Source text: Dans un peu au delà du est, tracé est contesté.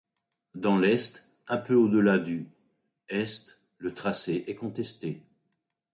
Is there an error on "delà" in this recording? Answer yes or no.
no